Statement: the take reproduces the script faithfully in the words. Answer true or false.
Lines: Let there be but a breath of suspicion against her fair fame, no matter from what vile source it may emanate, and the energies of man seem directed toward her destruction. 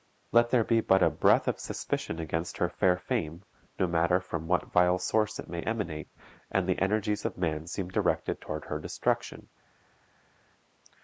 true